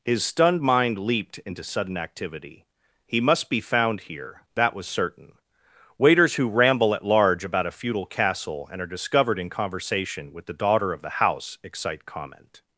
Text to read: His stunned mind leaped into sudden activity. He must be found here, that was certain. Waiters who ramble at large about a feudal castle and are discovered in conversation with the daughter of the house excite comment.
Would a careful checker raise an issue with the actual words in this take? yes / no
no